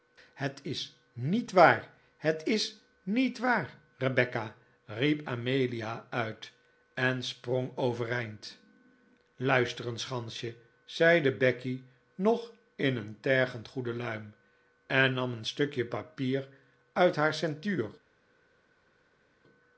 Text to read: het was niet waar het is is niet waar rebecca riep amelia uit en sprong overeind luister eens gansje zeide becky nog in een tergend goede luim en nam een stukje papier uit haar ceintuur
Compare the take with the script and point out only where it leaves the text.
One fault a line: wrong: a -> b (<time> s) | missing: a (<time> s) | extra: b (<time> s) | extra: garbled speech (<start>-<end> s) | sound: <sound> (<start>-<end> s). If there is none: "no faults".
wrong: was -> is (0.6 s)
missing: is (2.8 s)